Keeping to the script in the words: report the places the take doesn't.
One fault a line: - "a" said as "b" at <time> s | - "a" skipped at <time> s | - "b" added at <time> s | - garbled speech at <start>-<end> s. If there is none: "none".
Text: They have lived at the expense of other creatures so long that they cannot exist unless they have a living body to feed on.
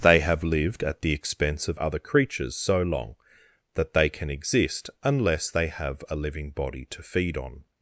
- "cannot" said as "can" at 4.1 s